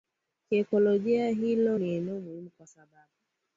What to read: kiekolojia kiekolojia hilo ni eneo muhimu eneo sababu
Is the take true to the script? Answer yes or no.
no